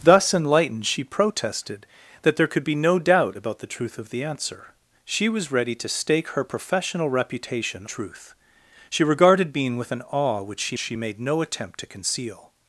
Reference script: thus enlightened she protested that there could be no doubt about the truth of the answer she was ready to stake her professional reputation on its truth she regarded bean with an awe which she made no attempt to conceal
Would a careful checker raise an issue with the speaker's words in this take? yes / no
yes